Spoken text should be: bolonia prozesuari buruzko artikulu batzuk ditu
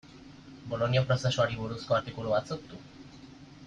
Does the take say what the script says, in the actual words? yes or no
yes